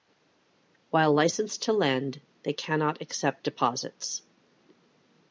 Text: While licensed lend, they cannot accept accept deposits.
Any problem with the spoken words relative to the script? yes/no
yes